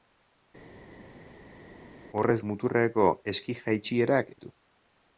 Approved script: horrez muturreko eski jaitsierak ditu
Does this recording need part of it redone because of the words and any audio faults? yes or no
no